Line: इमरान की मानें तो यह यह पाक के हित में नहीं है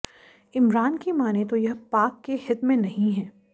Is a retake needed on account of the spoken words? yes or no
yes